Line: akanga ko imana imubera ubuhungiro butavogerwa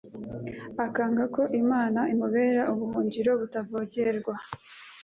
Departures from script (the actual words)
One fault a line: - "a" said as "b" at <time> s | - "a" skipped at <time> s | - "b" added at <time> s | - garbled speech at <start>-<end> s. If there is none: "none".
none